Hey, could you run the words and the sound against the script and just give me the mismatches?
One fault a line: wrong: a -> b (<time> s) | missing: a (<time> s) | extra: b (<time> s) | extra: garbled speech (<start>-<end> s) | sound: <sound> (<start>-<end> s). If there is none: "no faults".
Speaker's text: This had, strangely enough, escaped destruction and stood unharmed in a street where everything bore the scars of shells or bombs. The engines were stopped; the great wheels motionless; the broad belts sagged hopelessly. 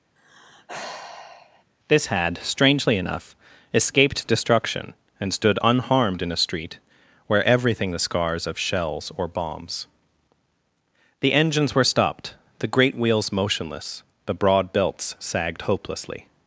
sound: sigh (0.2-1.6 s)
missing: bore (7.9 s)